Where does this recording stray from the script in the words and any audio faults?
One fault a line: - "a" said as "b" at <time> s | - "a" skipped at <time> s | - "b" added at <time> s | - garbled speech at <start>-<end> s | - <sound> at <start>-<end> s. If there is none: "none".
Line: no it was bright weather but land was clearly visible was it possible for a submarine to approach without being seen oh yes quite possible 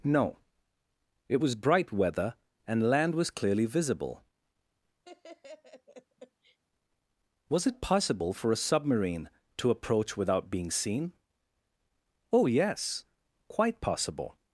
- "but" said as "and" at 2.7 s
- laugh at 5.0-6.6 s